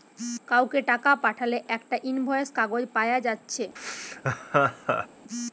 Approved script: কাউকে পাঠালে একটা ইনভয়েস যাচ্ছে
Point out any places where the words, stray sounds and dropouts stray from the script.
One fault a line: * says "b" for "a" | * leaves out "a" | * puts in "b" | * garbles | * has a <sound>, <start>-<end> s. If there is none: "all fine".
* puts in "টাকা"
* puts in "কাগজ পায়া"
* has a laugh, 3.8-5.1 s